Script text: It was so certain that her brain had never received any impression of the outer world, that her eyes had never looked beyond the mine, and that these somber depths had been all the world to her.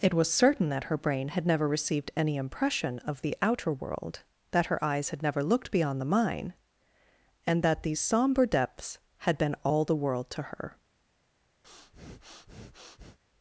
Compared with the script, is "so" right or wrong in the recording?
wrong